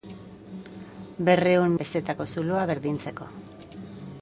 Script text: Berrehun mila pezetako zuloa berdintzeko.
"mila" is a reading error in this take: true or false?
true